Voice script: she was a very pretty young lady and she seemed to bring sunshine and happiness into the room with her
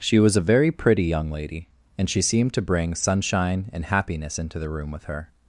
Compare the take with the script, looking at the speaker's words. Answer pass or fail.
pass